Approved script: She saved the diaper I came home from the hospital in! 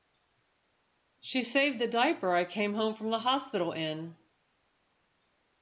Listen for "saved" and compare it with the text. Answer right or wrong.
right